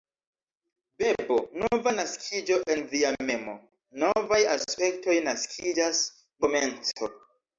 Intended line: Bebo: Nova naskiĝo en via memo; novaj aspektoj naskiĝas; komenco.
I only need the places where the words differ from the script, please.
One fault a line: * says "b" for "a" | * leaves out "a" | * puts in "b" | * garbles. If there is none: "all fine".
all fine